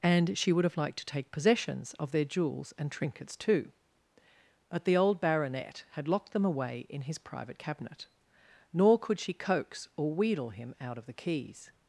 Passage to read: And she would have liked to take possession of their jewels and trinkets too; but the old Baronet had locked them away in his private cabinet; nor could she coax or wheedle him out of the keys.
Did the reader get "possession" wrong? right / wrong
wrong